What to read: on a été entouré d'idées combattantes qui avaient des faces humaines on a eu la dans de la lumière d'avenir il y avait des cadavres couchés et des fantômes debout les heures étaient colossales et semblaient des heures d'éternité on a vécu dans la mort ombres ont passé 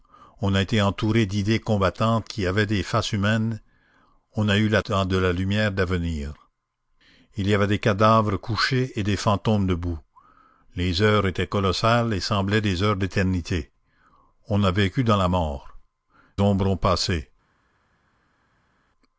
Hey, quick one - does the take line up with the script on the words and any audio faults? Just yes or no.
yes